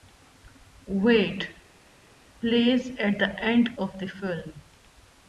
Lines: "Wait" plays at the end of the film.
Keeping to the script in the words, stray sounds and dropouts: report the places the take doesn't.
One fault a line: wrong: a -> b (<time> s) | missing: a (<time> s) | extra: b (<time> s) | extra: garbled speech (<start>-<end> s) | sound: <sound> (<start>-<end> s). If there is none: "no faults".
no faults